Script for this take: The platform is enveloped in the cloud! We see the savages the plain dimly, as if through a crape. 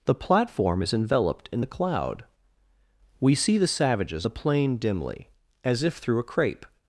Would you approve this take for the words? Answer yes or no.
yes